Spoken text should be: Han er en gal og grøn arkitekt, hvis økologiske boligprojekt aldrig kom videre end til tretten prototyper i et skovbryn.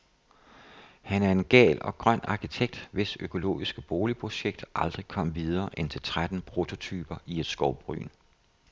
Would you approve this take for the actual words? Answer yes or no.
yes